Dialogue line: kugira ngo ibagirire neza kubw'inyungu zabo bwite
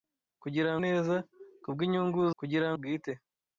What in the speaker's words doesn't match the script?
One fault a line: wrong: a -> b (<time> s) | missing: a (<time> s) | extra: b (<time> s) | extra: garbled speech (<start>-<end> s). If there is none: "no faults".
missing: ngo ibagirire (0.7 s)
wrong: zabo -> kugira (2.4 s)